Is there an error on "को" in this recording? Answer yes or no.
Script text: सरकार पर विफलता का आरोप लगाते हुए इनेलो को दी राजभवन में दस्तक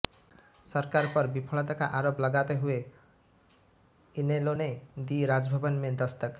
yes